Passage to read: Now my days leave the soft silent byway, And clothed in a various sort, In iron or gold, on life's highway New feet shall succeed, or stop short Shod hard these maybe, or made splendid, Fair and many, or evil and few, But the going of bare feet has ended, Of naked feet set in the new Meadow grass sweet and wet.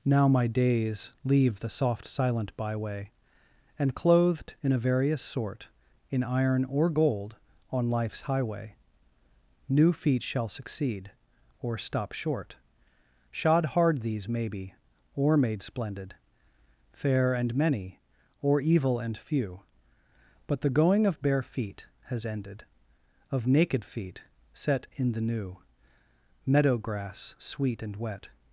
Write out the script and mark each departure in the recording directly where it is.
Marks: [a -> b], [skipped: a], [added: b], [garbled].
Now my days leave the soft silent byway, And clothed in a various sort, In iron or gold, on life's highway New feet shall succeed, or stop short Shod hard these maybe, or made splendid, Fair and many, or evil and few, But the going of bare feet has ended, Of naked feet set in the new Meadow grass sweet and wet.